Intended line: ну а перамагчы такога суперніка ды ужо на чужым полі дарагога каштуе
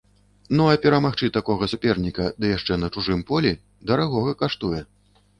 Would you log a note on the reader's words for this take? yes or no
yes